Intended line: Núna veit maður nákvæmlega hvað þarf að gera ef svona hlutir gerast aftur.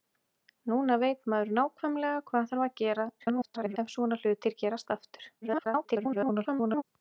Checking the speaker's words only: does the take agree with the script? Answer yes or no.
no